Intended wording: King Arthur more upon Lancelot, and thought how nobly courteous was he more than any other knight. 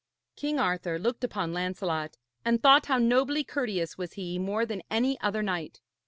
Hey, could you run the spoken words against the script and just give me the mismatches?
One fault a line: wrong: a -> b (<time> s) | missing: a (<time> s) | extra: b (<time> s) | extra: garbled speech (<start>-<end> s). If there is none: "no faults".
wrong: more -> looked (1.0 s)